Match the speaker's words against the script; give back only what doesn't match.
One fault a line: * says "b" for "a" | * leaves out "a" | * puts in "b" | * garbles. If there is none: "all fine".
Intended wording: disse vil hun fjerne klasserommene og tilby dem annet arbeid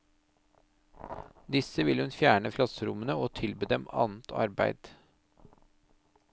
all fine